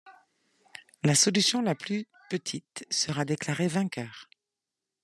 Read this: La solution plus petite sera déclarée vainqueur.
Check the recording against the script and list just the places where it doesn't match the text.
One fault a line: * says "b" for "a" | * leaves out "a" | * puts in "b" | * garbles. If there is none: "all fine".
* puts in "la"